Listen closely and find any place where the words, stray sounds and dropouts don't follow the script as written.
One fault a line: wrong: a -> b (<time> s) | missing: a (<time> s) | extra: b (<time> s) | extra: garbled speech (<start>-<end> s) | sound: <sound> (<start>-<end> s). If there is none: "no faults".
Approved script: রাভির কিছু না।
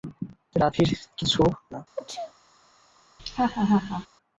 sound: sneeze (2.0-2.3 s)
sound: laugh (3.2-4.1 s)